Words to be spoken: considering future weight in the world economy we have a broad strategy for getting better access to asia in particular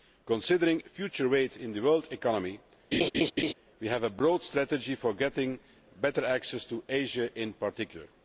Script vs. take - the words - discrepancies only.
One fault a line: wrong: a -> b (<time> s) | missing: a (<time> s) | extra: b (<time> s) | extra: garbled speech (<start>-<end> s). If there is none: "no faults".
no faults